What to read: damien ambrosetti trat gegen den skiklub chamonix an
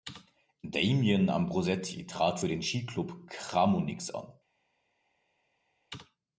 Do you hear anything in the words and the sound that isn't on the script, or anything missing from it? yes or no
yes